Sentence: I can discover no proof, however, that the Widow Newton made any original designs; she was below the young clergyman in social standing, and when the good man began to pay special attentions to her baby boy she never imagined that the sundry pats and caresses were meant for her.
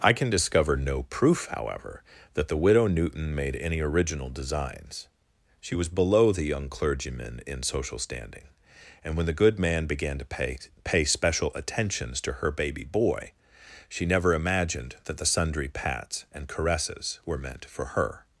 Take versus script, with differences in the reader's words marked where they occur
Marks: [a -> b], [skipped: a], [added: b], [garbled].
I can discover no proof, however, that the Widow Newton made any original designs; she was below the young clergyman in social standing, and when the good man began to pay [added: pay] special attentions to her baby boy she never imagined that the sundry pats and caresses were meant for her.